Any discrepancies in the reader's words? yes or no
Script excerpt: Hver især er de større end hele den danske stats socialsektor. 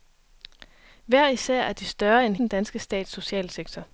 yes